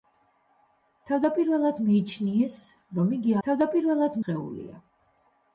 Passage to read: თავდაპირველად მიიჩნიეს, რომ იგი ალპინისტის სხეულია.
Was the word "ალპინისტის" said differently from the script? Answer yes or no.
yes